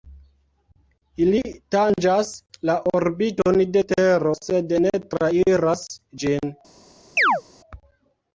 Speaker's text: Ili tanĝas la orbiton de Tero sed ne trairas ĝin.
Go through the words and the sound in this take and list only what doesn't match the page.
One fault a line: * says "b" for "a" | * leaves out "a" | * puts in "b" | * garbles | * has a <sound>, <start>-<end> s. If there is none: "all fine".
* has a chirp, 7.2-7.4 s